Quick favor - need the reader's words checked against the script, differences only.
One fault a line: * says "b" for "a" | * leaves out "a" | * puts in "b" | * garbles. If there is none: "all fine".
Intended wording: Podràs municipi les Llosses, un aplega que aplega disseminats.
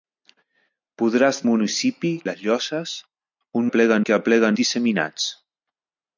all fine